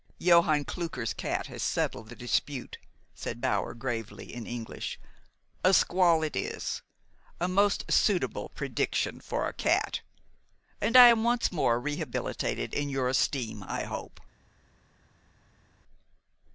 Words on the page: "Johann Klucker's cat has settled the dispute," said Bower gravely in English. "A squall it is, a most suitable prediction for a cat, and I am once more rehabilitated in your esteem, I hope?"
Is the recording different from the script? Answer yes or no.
no